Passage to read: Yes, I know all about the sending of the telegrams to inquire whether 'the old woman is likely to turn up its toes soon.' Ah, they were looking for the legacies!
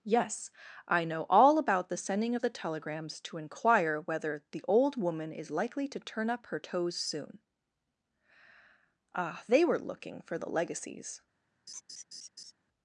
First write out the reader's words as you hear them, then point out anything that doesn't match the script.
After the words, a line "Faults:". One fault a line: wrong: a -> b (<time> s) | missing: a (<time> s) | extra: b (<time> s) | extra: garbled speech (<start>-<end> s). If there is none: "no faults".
Yes, I know all about the sending of the telegrams to inquire whether 'the old woman is likely to turn up her toes soon.' Ah, they were looking for the legacies!
Faults:
wrong: its -> her (6.5 s)